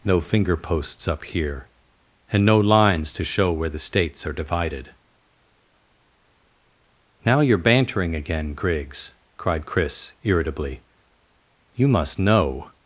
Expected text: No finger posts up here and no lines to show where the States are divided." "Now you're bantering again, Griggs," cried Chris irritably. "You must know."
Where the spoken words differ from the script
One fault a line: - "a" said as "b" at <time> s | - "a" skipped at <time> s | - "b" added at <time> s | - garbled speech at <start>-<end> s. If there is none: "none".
none